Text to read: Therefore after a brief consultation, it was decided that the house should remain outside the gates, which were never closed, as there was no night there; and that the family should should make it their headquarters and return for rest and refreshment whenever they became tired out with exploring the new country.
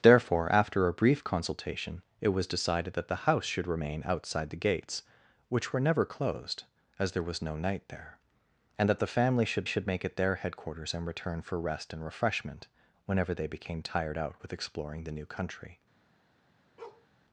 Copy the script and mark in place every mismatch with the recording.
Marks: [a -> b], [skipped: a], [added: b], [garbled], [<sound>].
Therefore after a brief consultation, it was decided that the house should remain outside the gates, which were never closed, as there was no night there; and that the family should should make it their headquarters and return for rest and refreshment whenever they became tired out with exploring the new country. [bark]